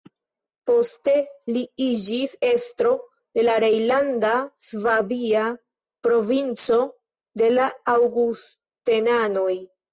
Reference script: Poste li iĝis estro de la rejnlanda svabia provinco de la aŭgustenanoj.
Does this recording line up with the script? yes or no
yes